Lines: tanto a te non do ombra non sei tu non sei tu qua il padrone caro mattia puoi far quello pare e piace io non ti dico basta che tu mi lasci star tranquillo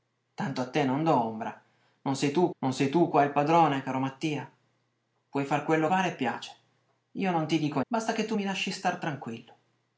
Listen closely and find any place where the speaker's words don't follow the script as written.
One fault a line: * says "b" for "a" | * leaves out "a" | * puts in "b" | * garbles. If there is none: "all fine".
all fine